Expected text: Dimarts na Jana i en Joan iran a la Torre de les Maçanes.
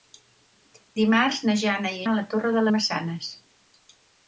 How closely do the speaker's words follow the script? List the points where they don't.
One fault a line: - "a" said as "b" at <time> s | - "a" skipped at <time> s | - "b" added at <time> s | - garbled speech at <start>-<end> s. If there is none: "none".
- "en Joan iran" skipped at 2.0 s
- "les" skipped at 2.6 s